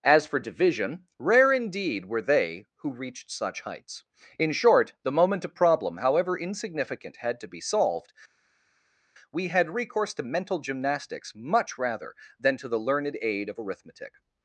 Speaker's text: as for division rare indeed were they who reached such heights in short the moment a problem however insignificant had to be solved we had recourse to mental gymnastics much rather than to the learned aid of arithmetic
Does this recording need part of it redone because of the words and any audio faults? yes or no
no